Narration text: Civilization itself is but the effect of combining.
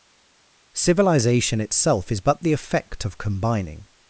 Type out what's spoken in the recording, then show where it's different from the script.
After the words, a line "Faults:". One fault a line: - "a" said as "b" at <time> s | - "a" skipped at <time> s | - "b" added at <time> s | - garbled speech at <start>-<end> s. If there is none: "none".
Civilization itself is but the effect of combining.
Faults:
none